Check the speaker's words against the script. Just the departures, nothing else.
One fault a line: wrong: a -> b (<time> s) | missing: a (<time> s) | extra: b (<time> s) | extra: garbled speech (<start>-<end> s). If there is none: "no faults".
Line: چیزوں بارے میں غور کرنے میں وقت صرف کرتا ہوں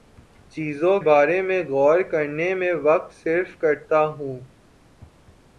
no faults